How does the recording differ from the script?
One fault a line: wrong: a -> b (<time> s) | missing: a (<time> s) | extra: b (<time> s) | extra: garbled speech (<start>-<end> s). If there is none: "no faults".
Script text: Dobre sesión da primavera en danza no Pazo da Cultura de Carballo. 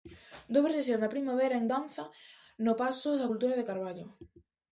no faults